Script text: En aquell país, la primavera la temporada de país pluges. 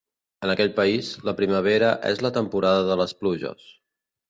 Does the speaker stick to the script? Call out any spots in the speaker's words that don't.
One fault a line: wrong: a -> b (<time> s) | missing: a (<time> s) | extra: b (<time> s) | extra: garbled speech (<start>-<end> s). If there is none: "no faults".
extra: és (2.1 s)
wrong: país -> les (3.0 s)